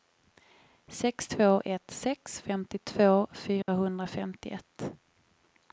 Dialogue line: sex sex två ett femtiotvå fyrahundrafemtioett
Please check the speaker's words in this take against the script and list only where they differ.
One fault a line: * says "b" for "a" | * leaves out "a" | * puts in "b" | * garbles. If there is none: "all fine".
* leaves out "sex"
* puts in "sex"